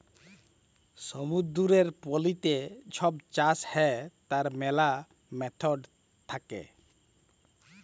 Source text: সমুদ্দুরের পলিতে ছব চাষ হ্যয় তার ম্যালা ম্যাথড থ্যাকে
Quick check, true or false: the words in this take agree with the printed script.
true